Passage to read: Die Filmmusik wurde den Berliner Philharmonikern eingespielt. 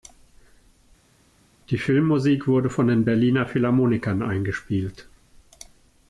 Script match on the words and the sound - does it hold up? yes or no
no